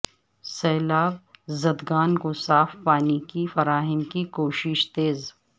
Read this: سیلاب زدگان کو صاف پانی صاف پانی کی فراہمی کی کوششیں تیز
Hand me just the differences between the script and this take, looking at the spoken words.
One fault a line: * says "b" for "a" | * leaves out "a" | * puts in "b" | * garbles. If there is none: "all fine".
* leaves out "صاف پانی"